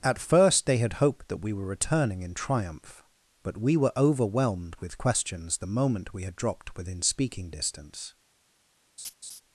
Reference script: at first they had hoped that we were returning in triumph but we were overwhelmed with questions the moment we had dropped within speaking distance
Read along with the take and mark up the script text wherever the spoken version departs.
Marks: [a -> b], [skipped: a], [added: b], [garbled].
at first they had hoped that we were returning in triumph but we were overwhelmed with questions the moment we had dropped within speaking distance